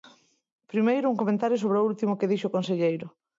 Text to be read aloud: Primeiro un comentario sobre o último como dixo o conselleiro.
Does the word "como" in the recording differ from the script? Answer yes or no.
yes